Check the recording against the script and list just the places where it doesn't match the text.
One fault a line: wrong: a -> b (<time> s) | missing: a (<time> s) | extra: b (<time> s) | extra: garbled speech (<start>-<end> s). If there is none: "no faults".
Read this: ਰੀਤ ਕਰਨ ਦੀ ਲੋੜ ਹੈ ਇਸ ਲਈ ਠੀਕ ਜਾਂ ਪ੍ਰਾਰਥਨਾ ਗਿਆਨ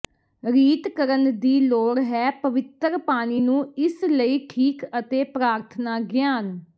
extra: ਪਵਿੱਤਰ ਪਾਣੀ ਨੂੰ (2.4 s)
wrong: ਜਾਂ -> ਅਤੇ (5.0 s)